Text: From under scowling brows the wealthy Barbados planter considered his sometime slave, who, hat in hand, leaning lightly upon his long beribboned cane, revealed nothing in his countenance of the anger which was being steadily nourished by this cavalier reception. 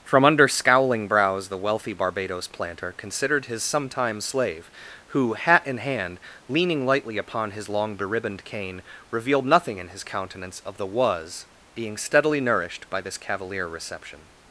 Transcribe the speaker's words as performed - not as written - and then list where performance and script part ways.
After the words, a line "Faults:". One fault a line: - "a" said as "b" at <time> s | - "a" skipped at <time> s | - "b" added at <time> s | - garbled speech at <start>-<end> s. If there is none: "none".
From under scowling brows the wealthy Barbados planter considered his sometime slave, who, hat in hand, leaning lightly upon his long beribboned cane, revealed nothing in his countenance of the was being steadily nourished by this cavalier reception.
Faults:
- "anger which" skipped at 10.9 s